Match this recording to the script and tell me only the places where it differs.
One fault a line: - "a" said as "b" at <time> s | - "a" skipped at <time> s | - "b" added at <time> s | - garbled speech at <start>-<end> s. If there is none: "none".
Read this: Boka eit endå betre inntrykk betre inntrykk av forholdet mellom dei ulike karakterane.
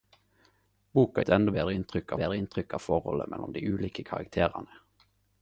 none